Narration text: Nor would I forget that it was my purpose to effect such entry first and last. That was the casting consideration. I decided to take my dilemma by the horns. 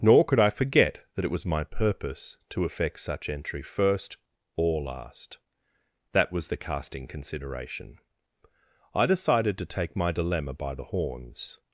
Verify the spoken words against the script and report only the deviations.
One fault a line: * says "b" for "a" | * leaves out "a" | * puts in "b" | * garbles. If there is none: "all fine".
* says "could" for "would"
* says "or" for "and"